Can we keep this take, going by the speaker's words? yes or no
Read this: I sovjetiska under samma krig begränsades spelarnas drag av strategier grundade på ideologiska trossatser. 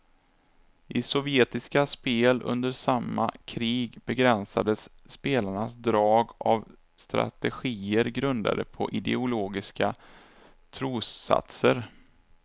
no